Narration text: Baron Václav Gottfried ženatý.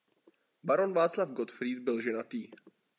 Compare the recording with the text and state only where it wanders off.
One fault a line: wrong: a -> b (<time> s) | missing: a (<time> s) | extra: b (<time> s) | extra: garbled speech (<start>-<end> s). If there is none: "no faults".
extra: byl (1.8 s)